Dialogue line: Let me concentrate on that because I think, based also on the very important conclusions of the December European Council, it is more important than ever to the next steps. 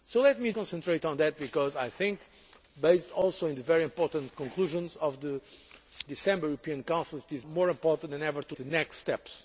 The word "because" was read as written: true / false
true